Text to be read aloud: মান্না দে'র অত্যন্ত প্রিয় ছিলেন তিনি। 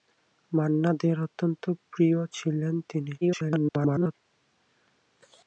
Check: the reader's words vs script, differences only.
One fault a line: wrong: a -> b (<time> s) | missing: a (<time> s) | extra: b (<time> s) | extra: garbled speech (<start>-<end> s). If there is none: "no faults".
extra: garbled speech (3.2-4.1 s)